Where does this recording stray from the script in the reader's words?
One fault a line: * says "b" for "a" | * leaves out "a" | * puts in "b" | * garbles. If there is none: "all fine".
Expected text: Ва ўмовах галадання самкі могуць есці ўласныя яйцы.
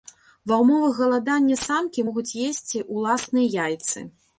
all fine